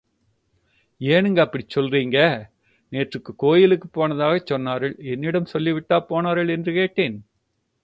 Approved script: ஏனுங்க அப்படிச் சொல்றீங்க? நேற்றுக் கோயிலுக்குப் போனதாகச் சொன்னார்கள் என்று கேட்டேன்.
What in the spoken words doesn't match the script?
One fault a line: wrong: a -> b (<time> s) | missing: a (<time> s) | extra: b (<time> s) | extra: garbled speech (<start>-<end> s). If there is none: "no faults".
extra: என்னிடம் சொல்லிவிட்டா போனார்கள் (5.0 s)